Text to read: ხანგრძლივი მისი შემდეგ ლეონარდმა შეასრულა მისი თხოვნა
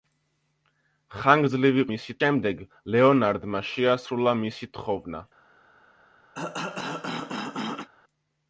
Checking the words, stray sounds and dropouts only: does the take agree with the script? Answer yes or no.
no